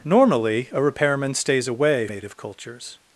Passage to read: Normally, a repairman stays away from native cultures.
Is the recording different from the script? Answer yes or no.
yes